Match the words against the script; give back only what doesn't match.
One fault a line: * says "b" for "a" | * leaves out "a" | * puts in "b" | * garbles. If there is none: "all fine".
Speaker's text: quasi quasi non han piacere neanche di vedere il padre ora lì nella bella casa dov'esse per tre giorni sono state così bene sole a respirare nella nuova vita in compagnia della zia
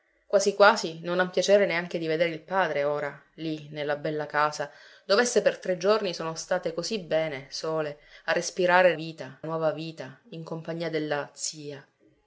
* says "vita" for "nella"